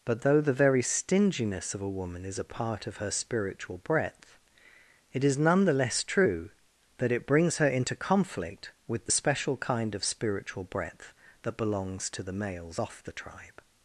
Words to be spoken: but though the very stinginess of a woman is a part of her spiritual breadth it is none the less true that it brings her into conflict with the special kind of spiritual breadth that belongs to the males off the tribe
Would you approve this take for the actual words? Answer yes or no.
yes